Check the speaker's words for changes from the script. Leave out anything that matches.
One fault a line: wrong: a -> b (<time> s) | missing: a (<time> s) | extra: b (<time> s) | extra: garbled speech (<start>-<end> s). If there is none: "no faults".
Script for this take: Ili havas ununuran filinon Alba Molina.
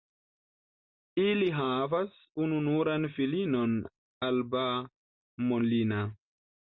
no faults